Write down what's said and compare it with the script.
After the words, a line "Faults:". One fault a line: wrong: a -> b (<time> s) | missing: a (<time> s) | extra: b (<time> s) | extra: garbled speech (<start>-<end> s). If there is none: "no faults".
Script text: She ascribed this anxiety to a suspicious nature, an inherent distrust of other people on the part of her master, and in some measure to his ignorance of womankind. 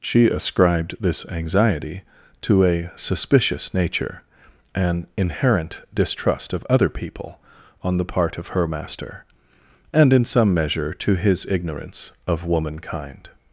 She ascribed this anxiety to a suspicious nature, an inherent distrust of other people on the part of her master, and in some measure to his ignorance of womankind.
Faults:
no faults